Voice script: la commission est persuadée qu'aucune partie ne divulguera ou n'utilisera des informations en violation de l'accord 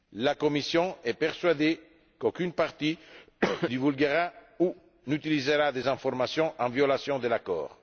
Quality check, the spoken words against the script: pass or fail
fail